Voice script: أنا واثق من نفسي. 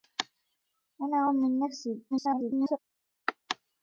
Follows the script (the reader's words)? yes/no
no